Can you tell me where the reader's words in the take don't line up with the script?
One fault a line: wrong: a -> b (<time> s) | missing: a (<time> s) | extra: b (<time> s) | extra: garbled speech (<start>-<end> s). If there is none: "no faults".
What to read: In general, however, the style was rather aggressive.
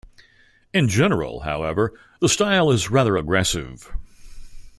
wrong: was -> is (2.7 s)